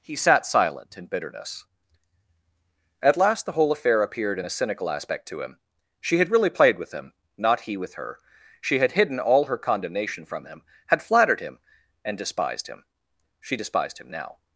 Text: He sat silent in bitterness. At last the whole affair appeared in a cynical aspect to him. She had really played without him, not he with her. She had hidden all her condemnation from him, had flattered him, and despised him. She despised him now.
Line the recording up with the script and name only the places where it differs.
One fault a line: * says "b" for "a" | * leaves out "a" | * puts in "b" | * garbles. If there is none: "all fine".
* says "with" for "without"